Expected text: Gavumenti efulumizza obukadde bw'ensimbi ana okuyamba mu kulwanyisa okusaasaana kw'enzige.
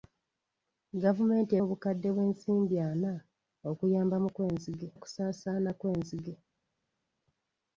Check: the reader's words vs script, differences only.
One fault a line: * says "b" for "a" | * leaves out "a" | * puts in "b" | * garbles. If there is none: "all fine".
* leaves out "efulumizza"
* says "kw'enzige" for "kulwanyisa"